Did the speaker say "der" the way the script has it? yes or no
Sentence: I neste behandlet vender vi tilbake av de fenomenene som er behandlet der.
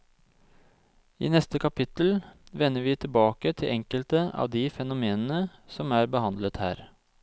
no